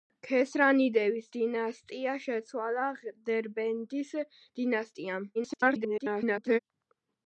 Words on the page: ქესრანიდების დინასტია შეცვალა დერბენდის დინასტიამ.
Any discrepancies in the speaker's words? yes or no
yes